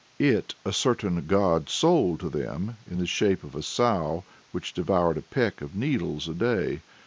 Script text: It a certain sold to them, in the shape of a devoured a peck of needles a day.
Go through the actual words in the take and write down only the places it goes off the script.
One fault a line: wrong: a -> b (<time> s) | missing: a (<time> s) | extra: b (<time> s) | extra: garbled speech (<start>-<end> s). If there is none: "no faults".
extra: god (1.3 s)
extra: sow which (3.6 s)